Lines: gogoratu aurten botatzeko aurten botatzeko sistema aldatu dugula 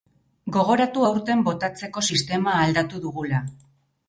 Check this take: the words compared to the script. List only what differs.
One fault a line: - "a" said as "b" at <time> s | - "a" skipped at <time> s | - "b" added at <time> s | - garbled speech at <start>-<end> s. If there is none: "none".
- "aurten botatzeko" skipped at 2.0 s